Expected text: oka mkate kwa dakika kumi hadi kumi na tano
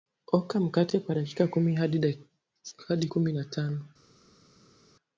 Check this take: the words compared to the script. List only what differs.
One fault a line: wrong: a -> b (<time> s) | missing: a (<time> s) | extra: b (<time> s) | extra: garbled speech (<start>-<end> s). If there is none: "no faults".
no faults